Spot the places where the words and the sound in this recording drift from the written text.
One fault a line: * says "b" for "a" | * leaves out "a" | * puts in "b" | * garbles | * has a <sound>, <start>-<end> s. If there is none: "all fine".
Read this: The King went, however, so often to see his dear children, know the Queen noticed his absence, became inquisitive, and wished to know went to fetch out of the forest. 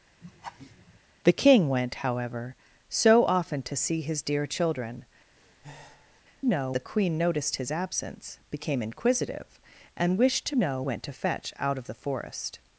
* has a laugh, 0.2-1.0 s
* has a breath, 5.4-6.2 s